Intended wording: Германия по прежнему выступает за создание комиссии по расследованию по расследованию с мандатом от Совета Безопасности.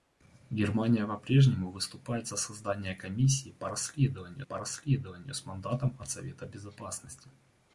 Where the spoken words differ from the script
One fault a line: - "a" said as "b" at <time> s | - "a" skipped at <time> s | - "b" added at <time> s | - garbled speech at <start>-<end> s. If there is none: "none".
none